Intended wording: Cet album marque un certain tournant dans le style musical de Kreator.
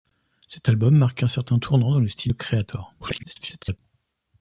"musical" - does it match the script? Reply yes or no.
no